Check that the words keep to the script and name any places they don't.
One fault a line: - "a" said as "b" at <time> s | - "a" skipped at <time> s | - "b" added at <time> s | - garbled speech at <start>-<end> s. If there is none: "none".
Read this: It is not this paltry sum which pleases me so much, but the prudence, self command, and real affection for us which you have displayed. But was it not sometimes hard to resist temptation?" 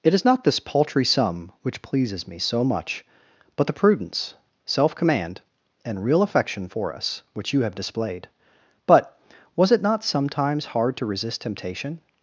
none